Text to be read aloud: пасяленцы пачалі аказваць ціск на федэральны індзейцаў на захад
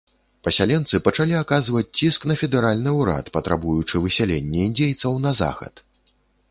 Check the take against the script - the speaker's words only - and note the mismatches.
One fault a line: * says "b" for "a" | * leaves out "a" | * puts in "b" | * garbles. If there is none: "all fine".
* puts in "ўрад патрабуючы высялення"